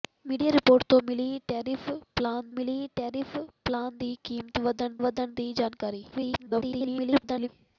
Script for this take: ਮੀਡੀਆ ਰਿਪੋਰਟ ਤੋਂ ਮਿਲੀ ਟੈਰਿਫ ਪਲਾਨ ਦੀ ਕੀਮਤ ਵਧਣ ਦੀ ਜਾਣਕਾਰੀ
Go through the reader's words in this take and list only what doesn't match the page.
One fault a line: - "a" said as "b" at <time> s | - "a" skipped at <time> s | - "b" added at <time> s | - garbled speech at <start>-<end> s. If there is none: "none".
- "ਮਿਲੀ ਟੈਰਿਫ ਪਲਾਨ" added at 2.5 s
- "ਵਧਣ" added at 5.0 s
- garbled speech at 6.1-7.5 s